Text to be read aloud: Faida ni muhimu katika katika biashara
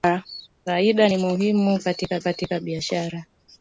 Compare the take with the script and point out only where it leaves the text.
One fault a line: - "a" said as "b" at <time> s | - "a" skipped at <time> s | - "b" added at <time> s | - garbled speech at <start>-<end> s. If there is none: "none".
none